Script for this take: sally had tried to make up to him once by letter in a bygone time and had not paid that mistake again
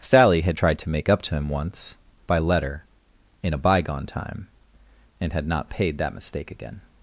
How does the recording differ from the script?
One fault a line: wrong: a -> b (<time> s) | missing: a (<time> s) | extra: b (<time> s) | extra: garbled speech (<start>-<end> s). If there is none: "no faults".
no faults